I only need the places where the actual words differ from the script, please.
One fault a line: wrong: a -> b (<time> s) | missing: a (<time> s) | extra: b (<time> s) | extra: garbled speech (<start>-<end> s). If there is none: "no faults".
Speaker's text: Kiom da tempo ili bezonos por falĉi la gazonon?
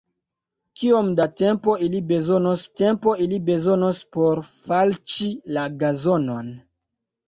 extra: tempo ili bezonos (2.8 s)